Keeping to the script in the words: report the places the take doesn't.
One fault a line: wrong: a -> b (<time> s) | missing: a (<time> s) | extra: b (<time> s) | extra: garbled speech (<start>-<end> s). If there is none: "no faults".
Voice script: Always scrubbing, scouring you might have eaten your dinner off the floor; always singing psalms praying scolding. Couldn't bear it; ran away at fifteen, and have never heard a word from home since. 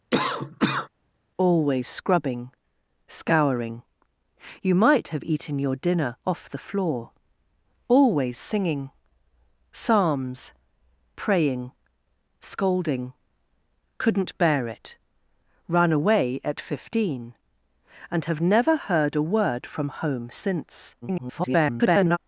extra: garbled speech (21.0-22.2 s)